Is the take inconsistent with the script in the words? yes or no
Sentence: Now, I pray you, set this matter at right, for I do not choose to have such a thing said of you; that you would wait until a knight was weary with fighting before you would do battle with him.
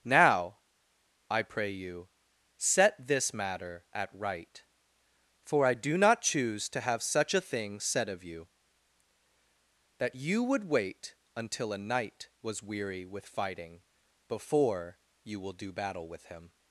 yes